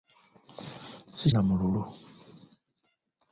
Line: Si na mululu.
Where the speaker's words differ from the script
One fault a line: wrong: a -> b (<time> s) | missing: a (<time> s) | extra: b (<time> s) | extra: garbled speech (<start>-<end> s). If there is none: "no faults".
no faults